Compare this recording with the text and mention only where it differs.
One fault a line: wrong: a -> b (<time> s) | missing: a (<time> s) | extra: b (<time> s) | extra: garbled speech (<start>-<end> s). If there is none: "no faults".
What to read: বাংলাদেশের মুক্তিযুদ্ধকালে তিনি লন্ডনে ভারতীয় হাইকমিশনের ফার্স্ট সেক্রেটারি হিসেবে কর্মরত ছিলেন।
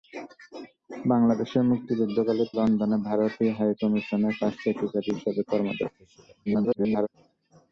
missing: তিনি (2.4 s)
extra: garbled speech (6.5-7.1 s)